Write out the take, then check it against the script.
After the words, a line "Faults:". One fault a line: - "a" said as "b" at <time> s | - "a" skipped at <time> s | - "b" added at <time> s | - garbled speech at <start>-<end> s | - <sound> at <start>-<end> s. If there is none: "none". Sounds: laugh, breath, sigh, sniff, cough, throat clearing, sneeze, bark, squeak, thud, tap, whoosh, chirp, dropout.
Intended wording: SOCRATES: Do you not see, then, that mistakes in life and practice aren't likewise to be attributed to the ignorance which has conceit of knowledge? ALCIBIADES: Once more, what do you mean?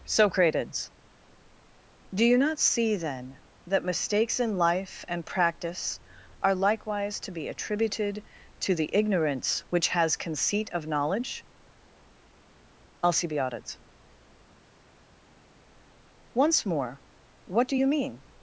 SOCRATES: Do you not see, then, that mistakes in life and practice are likewise to be attributed to the ignorance which has conceit of knowledge? ALCIBIADES: Once more, what do you mean?
Faults:
- "aren't" said as "are" at 6.4 s